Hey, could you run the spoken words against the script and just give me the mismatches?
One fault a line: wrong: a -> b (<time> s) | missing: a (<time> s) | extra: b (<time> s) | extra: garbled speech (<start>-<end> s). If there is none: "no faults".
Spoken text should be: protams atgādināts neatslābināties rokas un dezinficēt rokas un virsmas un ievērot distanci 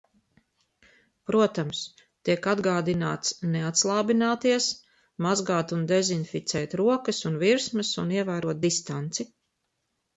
extra: tiek (2.3 s)
wrong: rokas -> mazgāt (5.3 s)